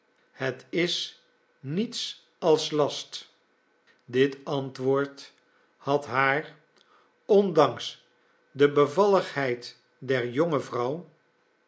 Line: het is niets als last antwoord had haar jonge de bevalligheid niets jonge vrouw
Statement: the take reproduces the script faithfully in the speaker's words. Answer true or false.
false